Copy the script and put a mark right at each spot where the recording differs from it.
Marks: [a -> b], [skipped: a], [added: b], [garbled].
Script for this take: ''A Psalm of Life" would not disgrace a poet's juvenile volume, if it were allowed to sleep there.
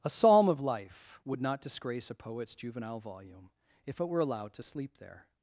''A Psalm of Life" would not disgrace a poet's juvenile volume, if it were allowed to sleep there.